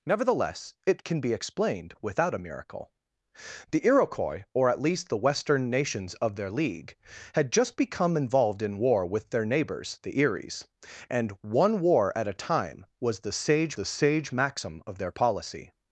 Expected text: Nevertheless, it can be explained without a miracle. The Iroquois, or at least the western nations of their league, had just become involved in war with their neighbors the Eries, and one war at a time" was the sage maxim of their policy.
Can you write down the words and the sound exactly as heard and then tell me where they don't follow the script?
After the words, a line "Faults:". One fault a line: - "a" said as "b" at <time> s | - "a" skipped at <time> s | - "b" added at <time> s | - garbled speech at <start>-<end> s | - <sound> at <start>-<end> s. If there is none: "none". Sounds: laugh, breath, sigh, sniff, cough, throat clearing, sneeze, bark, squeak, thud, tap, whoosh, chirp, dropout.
Nevertheless, it can be explained without a miracle. The Iroquois, or at least the western nations of their league, had just become involved in war with their neighbors the Eries, and one war at a time" was the sage the sage maxim of their policy.
Faults:
- "the sage" added at 13.7 s